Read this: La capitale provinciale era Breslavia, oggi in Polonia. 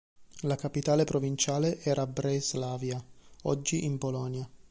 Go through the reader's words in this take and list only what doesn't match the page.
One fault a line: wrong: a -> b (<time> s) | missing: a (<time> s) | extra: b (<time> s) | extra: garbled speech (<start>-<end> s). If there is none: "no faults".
no faults